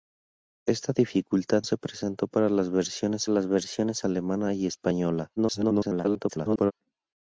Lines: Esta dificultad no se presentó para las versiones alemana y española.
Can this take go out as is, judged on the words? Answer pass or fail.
fail